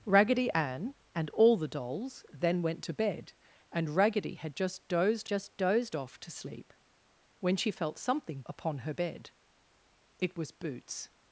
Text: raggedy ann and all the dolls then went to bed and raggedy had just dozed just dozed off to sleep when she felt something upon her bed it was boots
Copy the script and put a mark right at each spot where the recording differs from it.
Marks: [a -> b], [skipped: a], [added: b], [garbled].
raggedy ann and all the dolls then went to bed and raggedy had just dozed just dozed off to sleep when she felt something upon her bed it was boots